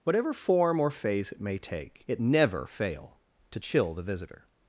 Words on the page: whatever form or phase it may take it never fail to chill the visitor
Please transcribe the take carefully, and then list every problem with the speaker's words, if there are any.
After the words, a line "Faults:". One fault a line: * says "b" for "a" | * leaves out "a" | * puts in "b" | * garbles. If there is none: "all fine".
whatever form or phase it may take it never fail to chill the visitor
Faults:
all fine